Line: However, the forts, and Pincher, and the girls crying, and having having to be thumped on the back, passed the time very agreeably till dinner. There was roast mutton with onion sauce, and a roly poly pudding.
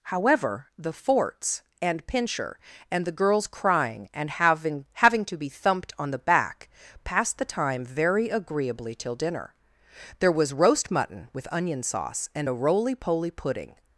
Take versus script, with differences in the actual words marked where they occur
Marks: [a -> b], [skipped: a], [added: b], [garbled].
However, the forts, and Pincher, and the girls crying, and having having to be thumped on the back, passed the time very agreeably till dinner. There was roast mutton with onion sauce, and a roly poly pudding.